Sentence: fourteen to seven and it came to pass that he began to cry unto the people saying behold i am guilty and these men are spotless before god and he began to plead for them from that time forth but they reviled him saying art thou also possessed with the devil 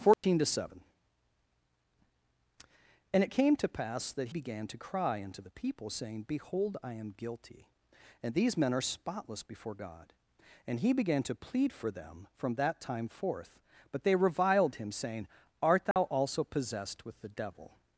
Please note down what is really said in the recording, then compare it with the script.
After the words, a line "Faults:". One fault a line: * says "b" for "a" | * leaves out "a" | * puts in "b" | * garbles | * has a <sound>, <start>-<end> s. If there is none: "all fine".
fourteen to seven and it came to pass that began to cry unto the people saying behold i am guilty and these men are spotless before god and he began to plead for them from that time forth but they reviled him saying art thou also possessed with the devil
Faults:
* has a dropout, 0.1-0.2 s
* leaves out "he"
* has a dropout, 15.9-16.0 s